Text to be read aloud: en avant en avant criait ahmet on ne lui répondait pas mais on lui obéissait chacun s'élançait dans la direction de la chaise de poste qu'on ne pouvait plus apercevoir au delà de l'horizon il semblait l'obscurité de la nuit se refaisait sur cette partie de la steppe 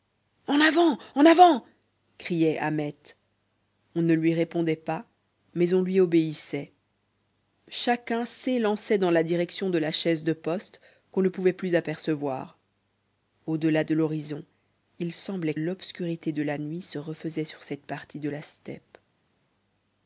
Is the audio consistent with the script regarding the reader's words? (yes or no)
yes